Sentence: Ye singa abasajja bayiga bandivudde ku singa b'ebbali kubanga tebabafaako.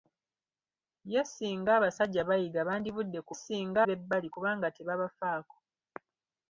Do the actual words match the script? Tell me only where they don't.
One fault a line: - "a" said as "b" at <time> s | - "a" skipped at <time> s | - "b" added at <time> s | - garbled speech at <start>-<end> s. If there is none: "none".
none